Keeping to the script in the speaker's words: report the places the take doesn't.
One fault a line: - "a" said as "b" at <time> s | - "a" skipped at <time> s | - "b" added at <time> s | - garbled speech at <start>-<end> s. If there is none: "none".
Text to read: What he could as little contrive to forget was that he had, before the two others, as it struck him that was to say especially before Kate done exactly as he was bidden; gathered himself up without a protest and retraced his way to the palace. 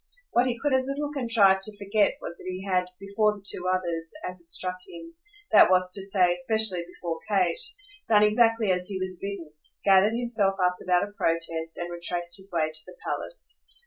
none